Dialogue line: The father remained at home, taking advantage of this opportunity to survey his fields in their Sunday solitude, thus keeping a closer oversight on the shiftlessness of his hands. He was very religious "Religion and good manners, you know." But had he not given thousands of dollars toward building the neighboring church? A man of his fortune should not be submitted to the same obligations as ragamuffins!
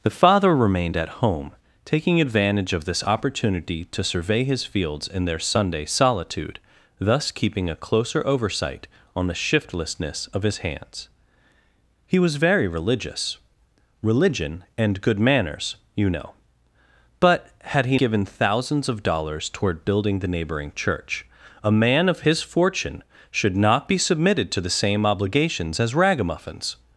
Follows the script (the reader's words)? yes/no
no